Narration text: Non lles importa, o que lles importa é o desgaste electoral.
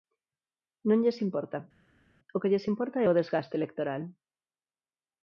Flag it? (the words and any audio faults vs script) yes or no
no